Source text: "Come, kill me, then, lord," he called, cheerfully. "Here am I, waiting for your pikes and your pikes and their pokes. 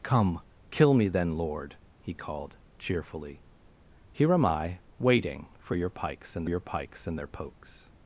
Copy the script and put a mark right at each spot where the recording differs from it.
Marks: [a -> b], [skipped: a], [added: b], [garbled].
"Come, kill me, then, lord," he called, cheerfully. "Here am I, waiting for your pikes and your pikes and their pokes.